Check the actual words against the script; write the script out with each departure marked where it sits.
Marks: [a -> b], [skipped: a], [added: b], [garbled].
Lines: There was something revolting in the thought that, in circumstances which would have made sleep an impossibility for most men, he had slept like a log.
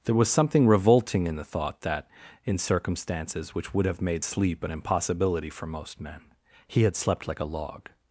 There was something revolting in the thought that, in circumstances which would have made sleep an impossibility for most men, he had slept like a log.